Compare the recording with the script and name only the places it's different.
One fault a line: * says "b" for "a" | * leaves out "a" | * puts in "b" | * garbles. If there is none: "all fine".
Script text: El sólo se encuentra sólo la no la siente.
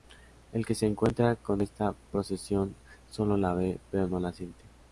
* says "que" for "sólo"
* puts in "con esta procesión"
* puts in "ve pero"